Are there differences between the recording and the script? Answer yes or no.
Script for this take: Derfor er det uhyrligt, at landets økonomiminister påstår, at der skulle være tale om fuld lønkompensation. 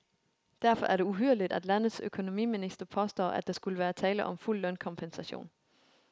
no